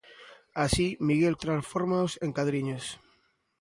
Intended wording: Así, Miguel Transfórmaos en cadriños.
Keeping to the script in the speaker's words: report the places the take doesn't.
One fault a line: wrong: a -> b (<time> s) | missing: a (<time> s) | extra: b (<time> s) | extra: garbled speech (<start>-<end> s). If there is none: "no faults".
no faults